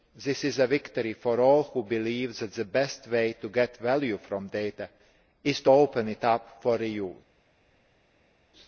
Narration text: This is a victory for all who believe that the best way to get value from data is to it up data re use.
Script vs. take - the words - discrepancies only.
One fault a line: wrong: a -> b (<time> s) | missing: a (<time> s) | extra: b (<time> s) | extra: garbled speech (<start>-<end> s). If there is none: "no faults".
extra: open (5.7 s)
wrong: data -> for (6.6 s)